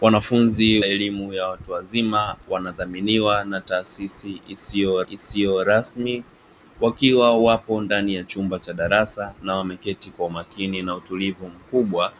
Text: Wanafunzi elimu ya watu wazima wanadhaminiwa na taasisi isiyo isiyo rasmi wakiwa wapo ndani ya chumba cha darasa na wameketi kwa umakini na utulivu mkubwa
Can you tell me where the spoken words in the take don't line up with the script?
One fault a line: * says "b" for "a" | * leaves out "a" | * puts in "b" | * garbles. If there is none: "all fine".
all fine